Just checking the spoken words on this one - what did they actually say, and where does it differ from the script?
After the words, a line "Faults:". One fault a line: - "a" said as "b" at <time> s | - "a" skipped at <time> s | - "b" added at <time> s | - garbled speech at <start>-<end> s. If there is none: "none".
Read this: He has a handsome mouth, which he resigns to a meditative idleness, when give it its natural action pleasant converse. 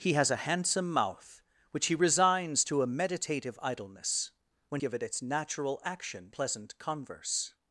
He has a handsome mouth, which he resigns to a meditative idleness, when give it its natural action pleasant converse.
Faults:
none